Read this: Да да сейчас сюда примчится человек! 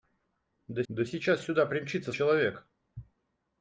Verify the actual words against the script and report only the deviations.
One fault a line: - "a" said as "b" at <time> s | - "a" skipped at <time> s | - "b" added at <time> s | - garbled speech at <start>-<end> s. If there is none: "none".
none